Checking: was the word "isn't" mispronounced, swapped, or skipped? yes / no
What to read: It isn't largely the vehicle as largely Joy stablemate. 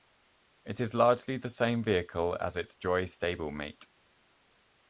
yes